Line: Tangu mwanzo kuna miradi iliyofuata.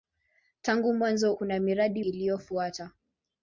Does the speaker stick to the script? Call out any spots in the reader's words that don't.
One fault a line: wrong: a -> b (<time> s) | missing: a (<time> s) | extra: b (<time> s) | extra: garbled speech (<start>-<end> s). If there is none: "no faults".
no faults